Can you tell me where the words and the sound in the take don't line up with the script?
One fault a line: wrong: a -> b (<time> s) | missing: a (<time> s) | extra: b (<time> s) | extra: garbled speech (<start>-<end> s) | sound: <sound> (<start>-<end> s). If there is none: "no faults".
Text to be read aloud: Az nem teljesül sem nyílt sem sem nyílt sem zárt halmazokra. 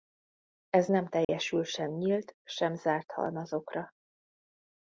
wrong: Az -> Ez (0.7 s)
sound: dropout (1.2-1.3 s)
missing: sem nyílt sem (2.7 s)